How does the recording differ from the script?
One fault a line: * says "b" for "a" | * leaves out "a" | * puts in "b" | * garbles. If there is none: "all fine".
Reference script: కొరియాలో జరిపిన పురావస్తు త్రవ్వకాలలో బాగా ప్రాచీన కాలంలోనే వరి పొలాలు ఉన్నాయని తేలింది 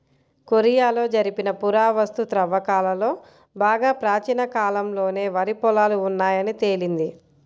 all fine